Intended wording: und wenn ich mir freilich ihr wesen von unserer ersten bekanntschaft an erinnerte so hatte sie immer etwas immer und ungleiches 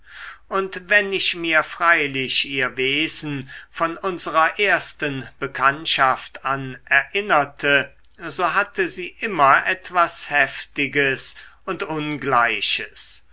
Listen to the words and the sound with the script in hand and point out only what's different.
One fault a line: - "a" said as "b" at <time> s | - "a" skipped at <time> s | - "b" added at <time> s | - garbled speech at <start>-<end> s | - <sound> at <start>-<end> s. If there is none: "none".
- "immer" said as "heftiges" at 10.3 s